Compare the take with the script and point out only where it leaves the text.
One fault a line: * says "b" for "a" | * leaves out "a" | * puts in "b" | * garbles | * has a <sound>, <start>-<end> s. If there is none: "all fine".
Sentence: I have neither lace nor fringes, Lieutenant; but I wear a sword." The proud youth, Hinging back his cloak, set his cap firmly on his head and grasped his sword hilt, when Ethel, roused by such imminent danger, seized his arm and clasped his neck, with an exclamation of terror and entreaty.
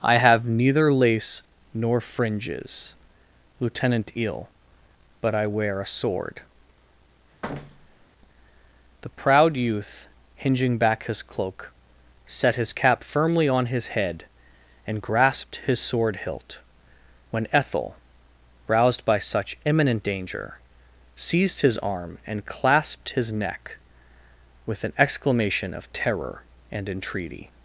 * puts in "eel"
* has a thud, 7.4-8.1 s